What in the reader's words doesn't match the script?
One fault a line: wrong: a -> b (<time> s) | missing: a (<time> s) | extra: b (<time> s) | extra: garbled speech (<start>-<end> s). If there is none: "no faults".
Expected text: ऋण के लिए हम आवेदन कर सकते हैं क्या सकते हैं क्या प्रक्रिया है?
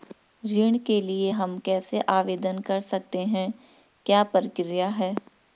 extra: कैसे (1.6 s)
missing: सकते हैं क्या (4.2 s)